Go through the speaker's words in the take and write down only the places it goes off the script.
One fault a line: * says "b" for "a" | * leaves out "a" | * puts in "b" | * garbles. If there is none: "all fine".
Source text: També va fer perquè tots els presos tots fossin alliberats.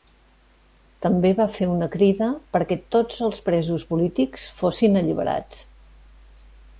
* puts in "una crida"
* says "polítics" for "tots"